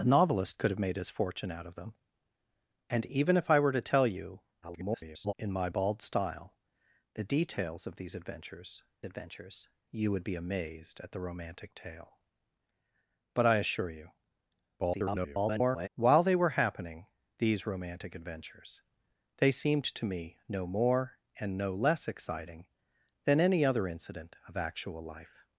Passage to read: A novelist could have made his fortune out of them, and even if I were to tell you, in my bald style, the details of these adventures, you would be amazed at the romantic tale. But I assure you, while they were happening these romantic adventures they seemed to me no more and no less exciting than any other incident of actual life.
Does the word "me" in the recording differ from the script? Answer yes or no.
no